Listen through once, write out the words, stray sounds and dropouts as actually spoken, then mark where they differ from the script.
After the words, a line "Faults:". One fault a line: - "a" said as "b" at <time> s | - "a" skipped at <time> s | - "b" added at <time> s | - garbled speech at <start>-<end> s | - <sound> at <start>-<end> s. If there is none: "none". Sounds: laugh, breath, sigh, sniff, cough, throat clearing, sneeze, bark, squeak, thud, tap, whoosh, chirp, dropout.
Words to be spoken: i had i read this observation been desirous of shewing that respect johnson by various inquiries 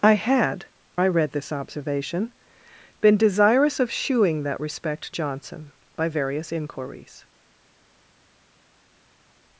i had i read this observation been desirous of shewing that respect johnson by various inquiries
Faults:
none